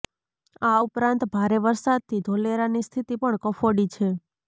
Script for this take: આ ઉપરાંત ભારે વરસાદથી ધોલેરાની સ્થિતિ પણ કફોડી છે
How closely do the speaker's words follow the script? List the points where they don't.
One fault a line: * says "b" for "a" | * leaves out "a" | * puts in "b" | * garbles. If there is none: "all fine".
all fine